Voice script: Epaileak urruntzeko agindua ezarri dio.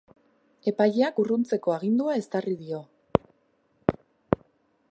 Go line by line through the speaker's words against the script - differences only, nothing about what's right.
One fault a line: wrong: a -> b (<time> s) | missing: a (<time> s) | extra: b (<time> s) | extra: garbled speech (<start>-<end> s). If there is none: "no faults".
no faults